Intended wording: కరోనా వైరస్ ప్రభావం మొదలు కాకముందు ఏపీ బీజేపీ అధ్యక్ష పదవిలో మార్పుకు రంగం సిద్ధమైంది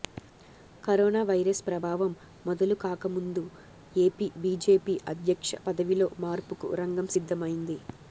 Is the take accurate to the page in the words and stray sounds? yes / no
yes